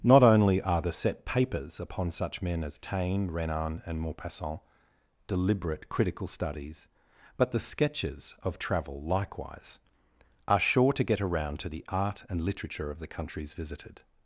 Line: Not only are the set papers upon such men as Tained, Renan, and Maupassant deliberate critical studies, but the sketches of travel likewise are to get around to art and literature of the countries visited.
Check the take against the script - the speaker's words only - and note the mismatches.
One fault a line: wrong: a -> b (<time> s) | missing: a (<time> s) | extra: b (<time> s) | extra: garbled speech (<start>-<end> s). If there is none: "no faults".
wrong: Tained -> Taine (2.8 s)
extra: sure (10.6 s)
extra: the (11.7 s)